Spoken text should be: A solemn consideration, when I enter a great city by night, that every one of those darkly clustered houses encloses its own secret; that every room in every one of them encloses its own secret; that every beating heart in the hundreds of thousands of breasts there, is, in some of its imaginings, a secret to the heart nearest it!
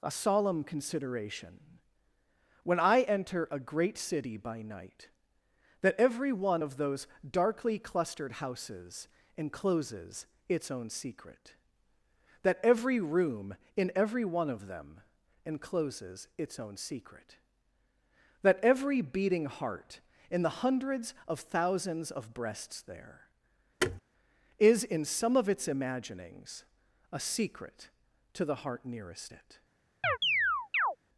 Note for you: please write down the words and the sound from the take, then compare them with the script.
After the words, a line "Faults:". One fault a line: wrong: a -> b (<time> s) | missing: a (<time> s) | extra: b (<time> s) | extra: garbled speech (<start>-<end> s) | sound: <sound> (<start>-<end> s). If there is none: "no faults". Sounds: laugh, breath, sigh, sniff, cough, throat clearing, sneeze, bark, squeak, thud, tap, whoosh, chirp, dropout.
A solemn consideration, when I enter a great city by night, that every one of those darkly clustered houses encloses its own secret; that every room in every one of them encloses its own secret; that every beating heart in the hundreds of thousands of breasts there, is, in some of its imaginings, a secret to the heart nearest it!
Faults:
sound: thud (23.8-24.0 s)
sound: chirp (30.0-31.0 s)